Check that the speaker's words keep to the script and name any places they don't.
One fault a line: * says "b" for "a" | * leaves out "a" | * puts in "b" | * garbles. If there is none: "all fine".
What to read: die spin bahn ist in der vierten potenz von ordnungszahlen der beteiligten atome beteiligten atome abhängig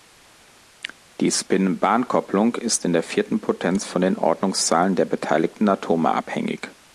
* puts in "kopplung"
* puts in "den"
* leaves out "beteiligten atome"